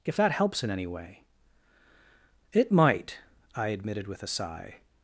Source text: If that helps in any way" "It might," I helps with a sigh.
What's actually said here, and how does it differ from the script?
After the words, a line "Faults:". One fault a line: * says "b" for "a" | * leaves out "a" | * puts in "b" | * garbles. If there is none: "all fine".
If that helps in any way" "It might," I admitted with a sigh.
Faults:
* says "admitted" for "helps"